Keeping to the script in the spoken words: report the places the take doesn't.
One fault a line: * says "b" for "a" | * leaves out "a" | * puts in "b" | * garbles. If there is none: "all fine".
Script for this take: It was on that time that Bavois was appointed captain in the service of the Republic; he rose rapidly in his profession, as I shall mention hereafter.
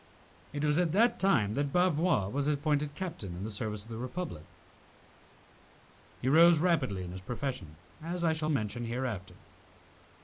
* says "at" for "on"